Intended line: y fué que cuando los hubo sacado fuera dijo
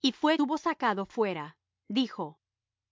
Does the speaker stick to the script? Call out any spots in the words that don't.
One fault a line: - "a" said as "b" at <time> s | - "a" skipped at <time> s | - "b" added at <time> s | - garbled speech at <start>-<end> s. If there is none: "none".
- "que cuando los" skipped at 0.4 s